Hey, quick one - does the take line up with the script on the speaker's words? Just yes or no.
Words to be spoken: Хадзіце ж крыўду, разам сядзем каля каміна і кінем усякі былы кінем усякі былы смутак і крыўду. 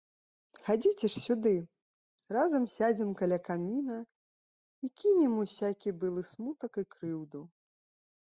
no